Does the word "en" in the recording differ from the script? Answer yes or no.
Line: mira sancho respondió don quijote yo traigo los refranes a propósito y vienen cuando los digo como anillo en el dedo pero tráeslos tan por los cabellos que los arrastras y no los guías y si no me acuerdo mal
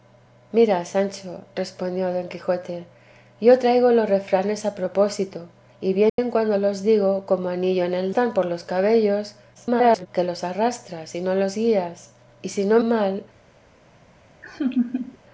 no